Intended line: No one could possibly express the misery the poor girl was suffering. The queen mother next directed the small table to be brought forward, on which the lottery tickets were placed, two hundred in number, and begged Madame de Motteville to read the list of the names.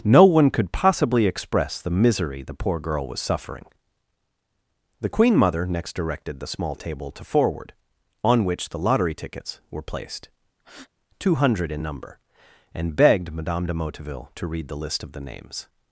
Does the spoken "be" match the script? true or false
false